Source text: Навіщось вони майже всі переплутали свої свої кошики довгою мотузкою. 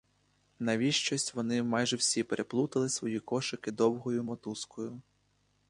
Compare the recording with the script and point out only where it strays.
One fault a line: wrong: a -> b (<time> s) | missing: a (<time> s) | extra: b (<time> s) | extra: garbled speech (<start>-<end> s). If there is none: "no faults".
missing: свої (3.2 s)